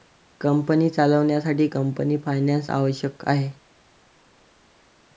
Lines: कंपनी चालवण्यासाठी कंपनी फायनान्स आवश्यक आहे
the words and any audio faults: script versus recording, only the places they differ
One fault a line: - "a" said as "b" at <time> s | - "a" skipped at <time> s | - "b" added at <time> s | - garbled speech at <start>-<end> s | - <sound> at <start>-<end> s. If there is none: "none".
none